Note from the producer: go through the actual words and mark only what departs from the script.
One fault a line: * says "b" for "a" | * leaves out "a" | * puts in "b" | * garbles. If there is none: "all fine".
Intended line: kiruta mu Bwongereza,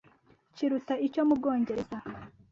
* puts in "icyo"